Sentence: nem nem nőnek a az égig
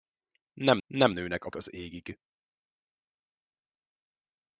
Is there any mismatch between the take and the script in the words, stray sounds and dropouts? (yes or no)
no